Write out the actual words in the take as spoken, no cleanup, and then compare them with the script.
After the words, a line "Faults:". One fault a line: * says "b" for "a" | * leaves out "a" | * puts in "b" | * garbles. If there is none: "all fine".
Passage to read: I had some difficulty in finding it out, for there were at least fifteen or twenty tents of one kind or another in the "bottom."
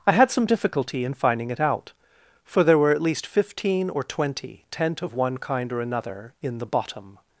I had some difficulty in finding it out, for there were at least fifteen or twenty tent of one kind or another in the "bottom."
Faults:
* says "tent" for "tents"